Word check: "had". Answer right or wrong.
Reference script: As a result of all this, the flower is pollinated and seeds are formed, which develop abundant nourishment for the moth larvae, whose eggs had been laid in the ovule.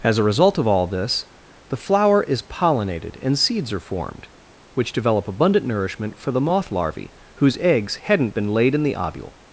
wrong